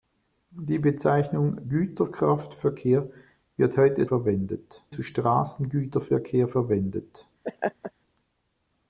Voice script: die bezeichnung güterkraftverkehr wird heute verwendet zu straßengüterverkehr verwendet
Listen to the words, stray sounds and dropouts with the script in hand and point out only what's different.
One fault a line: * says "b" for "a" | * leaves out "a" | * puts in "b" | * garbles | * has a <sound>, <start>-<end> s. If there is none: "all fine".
* has a laugh, 7.4-7.9 s